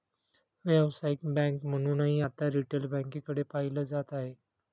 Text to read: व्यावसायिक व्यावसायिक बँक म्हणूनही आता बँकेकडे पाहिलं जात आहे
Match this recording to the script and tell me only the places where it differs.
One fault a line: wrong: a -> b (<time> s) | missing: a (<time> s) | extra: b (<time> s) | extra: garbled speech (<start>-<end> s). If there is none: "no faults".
missing: व्यावसायिक (1.2 s)
extra: रिटेल (2.5 s)